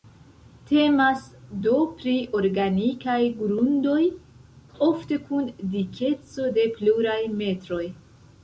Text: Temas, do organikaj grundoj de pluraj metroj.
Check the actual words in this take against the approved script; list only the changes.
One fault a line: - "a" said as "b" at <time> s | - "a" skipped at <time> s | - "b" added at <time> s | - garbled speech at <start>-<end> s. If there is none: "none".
- "pri" added at 2.0 s
- "ofte kun dikeco" added at 4.9 s